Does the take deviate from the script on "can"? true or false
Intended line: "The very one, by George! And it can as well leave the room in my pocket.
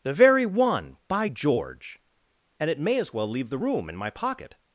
true